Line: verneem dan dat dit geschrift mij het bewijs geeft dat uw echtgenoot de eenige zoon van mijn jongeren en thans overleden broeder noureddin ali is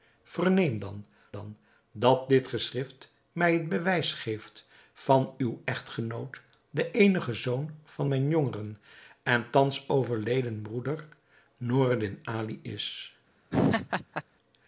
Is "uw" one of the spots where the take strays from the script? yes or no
no